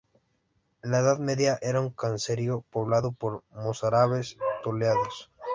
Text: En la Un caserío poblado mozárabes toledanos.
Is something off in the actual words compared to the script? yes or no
yes